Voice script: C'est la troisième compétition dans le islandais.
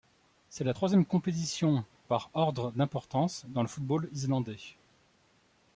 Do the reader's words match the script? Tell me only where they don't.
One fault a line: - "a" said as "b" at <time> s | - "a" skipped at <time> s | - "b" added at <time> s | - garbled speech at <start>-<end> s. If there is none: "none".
- "par ordre d'importance" added at 2.1 s
- "football" added at 3.7 s